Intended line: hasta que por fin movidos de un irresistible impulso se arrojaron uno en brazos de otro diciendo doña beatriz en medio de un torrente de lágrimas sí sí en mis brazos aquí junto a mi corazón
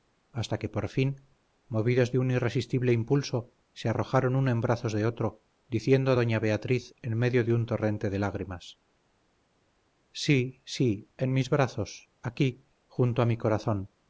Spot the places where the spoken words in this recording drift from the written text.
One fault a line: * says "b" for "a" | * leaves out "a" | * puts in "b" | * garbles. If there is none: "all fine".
all fine